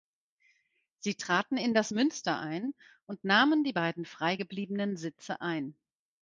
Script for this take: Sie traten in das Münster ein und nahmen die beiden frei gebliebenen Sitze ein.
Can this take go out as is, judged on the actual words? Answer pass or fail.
pass